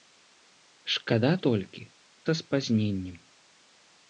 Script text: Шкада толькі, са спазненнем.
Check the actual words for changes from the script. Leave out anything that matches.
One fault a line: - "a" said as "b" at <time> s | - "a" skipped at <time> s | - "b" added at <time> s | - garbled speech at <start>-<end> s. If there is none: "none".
none